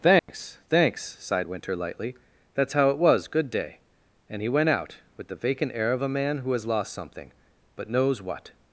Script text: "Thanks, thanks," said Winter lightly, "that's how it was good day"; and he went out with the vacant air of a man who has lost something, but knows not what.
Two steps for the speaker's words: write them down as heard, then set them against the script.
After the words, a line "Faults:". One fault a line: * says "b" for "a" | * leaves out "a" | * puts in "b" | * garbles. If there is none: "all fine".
"Thanks, thanks," sighed Winter lightly, "that's how it was good day"; and he went out with the vacant air of a man who has lost something, but knows what.
Faults:
* says "sighed" for "said"
* leaves out "not"